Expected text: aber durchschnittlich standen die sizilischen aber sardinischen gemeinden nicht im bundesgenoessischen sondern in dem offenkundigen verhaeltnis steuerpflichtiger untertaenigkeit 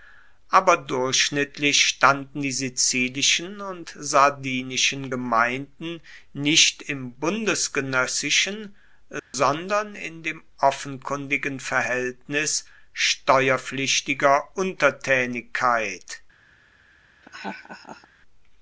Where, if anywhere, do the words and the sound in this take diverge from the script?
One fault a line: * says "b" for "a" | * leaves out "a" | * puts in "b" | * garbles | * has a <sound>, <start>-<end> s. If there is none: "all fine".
* says "und" for "aber"
* has a dropout, 9.2-9.3 s
* has a laugh, 17.2-18.1 s